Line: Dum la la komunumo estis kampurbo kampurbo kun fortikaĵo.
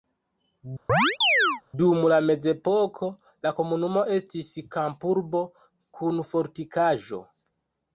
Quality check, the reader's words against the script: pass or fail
fail